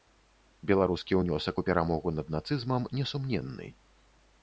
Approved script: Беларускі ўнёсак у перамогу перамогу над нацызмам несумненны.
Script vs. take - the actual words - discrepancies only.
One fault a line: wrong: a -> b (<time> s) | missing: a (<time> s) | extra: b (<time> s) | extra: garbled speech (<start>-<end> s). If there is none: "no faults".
missing: перамогу (2.1 s)